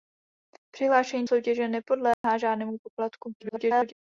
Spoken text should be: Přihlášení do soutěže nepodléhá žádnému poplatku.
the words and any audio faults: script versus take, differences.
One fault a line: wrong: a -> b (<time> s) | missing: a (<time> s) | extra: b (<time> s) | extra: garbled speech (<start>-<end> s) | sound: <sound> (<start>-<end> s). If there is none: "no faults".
missing: do (1.2 s)
sound: dropout (2.1-2.2 s)
extra: garbled speech (3.4-3.9 s)